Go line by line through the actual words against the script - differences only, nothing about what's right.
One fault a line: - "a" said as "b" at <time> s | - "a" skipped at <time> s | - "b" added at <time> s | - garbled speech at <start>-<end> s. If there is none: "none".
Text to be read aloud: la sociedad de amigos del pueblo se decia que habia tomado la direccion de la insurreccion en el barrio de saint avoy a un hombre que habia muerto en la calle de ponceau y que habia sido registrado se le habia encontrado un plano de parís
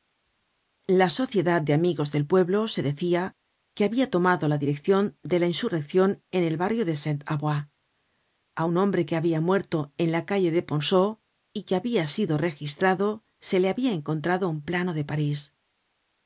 none